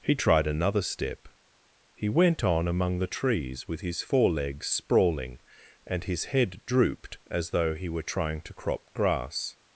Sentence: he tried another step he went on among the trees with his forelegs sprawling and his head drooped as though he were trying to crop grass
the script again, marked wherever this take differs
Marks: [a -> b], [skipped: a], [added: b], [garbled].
he tried another step he went on among the trees with his forelegs sprawling and his head drooped as though he were trying to crop grass